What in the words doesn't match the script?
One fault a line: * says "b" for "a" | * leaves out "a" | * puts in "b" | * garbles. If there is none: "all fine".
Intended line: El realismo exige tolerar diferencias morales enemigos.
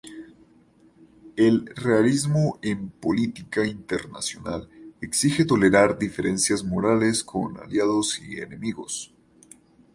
* puts in "en política internacional"
* puts in "con aliados y"